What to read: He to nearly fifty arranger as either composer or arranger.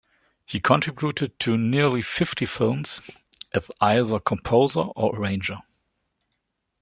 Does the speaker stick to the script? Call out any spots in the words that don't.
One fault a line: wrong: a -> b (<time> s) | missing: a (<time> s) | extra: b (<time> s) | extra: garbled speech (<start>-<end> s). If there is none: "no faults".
extra: contributed (0.6 s)
wrong: arranger -> films (2.5 s)